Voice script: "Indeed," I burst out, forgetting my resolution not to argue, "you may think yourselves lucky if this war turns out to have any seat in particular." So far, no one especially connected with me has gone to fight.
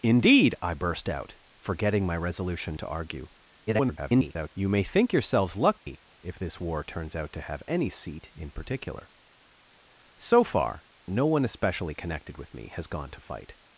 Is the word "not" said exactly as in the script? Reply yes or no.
no